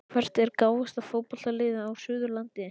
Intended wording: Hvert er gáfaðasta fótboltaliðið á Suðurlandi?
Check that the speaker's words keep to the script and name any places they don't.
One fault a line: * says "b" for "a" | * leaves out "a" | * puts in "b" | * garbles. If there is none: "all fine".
all fine